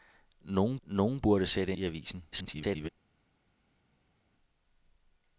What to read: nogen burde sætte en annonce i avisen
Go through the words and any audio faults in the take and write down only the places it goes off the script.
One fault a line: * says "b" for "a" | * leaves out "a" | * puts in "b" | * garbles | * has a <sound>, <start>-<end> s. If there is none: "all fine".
* puts in "nogen"
* leaves out "en annonce"
* garbles